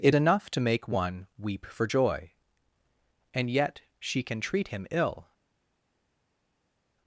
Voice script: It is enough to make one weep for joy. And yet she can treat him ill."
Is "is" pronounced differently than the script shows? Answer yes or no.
yes